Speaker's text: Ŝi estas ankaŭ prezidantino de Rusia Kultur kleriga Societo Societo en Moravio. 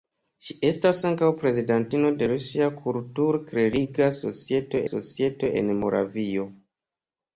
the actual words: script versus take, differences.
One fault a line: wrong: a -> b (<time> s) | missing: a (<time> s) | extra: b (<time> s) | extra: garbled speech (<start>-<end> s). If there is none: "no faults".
no faults